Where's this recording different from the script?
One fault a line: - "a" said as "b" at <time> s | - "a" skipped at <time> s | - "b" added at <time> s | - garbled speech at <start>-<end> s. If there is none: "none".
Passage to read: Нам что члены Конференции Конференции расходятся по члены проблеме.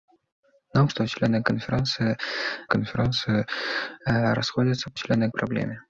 none